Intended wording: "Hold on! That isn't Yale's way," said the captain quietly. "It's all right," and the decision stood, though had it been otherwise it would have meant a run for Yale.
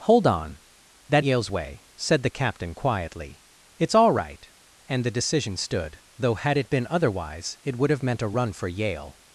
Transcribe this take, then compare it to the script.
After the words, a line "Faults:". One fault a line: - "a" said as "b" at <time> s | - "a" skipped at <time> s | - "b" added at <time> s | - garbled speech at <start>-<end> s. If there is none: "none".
"Hold on! That Yale's way," said the captain quietly. "It's all right," and the decision stood, though had it been otherwise it would have meant a run for Yale.
Faults:
- "isn't" skipped at 1.2 s